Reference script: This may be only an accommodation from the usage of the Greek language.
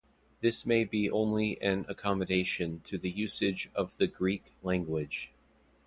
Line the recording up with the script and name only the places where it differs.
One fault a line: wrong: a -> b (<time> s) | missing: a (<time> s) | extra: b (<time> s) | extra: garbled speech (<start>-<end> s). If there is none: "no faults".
wrong: from -> to (2.8 s)